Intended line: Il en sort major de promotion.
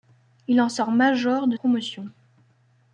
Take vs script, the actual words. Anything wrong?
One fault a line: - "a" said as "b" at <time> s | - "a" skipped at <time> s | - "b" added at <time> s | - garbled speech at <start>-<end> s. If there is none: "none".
none